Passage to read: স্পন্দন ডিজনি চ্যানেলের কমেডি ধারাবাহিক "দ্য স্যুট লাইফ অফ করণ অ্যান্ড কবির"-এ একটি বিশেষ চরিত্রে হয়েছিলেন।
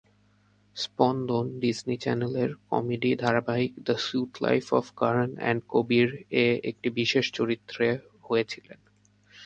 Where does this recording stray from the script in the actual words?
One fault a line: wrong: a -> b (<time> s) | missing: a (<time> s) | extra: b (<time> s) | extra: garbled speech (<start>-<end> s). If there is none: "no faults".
no faults